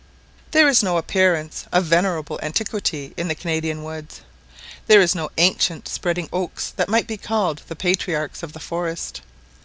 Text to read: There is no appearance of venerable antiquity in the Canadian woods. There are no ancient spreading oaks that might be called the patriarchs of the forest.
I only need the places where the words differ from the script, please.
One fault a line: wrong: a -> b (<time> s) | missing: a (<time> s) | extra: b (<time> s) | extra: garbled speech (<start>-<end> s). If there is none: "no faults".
no faults